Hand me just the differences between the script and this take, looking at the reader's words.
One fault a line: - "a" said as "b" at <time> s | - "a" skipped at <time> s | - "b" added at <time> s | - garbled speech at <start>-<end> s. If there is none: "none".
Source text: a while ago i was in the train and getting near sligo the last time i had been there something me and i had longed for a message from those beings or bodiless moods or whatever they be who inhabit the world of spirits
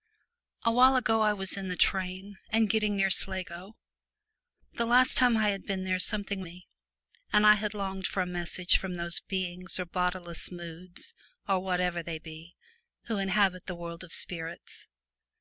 none